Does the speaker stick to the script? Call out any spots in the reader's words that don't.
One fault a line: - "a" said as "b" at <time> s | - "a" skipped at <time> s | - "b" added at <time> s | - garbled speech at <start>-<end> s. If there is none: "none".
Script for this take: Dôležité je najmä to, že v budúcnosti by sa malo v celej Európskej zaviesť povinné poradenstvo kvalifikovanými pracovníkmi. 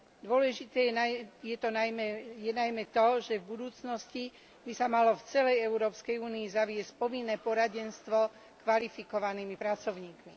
- "únii" added at 6.2 s